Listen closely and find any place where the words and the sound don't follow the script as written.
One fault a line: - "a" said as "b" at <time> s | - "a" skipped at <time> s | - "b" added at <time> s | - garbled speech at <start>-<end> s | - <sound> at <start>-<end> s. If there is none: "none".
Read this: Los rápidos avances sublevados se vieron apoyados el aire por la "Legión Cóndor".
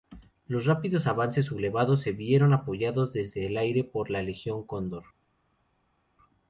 - "desde" added at 3.1 s